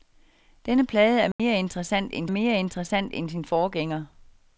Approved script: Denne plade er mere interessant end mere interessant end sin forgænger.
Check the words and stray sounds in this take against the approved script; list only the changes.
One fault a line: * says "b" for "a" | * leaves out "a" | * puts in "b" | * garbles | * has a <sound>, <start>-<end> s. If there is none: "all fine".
* has a dropout, 1.3-1.4 s